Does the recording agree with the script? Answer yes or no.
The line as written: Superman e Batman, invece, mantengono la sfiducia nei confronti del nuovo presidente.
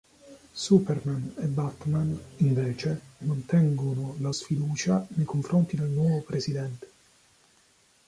yes